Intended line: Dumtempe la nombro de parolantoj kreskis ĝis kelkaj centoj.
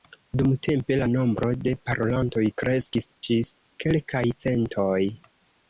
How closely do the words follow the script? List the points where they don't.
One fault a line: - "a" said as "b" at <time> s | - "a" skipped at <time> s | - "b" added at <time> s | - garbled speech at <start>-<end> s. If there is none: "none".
none